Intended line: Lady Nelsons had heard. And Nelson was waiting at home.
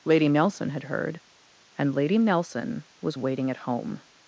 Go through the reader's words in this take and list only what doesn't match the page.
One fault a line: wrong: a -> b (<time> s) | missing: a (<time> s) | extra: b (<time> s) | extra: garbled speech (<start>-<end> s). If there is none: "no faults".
wrong: Nelsons -> Nelson (0.3 s)
extra: Lady (1.9 s)